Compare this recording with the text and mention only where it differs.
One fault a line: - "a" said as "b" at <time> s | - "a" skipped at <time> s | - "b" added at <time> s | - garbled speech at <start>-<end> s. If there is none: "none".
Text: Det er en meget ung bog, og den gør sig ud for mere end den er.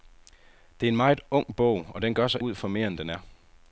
none